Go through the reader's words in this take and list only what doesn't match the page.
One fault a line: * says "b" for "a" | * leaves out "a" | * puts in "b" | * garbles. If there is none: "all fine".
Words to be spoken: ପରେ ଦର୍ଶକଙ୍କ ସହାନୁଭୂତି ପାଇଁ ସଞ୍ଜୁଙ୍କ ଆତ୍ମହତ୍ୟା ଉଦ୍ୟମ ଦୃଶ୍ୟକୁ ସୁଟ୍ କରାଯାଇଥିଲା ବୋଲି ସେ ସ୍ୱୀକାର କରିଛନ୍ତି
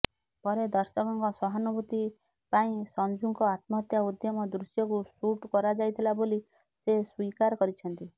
all fine